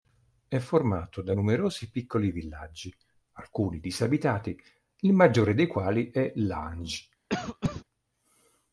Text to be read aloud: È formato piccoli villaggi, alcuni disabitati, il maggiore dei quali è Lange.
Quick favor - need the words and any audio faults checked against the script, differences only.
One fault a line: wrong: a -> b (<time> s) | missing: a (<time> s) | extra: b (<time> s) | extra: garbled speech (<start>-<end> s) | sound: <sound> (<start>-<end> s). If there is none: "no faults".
extra: da numerosi (1.2 s)
sound: cough (7.3-7.8 s)